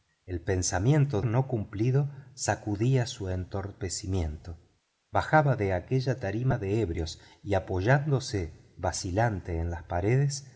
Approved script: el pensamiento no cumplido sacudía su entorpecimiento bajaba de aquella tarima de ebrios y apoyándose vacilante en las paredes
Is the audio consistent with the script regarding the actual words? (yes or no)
yes